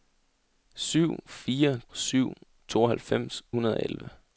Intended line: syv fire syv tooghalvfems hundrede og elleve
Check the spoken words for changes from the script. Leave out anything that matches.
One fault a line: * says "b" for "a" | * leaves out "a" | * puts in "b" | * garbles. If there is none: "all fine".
all fine